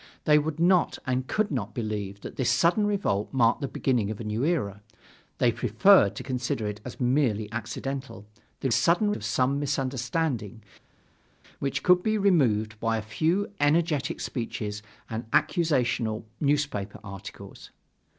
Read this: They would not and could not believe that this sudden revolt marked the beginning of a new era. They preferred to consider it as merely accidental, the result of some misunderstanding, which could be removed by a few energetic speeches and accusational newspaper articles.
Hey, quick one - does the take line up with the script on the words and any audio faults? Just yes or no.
no